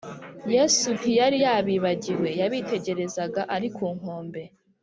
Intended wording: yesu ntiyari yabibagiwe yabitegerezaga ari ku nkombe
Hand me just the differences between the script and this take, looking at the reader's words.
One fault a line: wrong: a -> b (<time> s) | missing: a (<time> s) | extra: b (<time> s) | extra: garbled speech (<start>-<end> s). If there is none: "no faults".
no faults